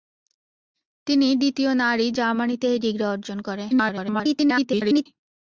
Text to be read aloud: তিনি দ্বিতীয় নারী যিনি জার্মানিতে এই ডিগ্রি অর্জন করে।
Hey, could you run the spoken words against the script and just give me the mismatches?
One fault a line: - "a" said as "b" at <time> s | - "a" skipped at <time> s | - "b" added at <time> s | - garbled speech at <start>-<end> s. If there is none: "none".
- "যিনি" skipped at 2.1 s
- garbled speech at 3.7-5.1 s